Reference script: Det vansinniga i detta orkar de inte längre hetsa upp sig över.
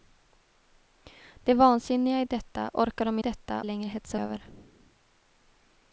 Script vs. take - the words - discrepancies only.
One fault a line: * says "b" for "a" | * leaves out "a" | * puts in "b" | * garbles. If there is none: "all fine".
* says "detta" for "inte"
* leaves out "upp sig"